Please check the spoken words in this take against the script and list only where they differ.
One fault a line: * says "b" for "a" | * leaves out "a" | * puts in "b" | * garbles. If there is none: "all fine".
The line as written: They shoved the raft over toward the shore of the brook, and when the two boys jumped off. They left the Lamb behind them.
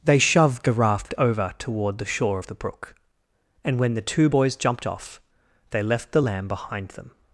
all fine